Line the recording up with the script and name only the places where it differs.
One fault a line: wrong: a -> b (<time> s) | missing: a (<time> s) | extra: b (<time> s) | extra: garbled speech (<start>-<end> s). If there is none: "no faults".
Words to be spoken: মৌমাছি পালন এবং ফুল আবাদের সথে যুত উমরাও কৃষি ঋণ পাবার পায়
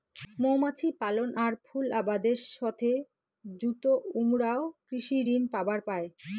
wrong: এবং -> আর (1.4 s)